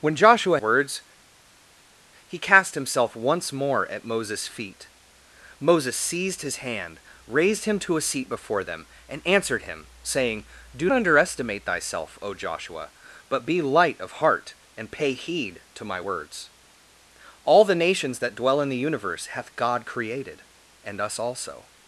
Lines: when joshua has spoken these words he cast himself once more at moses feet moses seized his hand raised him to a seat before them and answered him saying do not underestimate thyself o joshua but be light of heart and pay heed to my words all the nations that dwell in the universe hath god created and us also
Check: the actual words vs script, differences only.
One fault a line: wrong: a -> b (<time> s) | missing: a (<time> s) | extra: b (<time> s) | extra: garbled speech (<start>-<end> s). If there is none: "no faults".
missing: has spoken these (0.6 s)
missing: not (10.9 s)